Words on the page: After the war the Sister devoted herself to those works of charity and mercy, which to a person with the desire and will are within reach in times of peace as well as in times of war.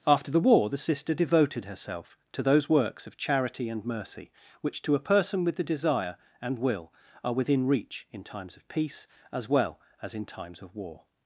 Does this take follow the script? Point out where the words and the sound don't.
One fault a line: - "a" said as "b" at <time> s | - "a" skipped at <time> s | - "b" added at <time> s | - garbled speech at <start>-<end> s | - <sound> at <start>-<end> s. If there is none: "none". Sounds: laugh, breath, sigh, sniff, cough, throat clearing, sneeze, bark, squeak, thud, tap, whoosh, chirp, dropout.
none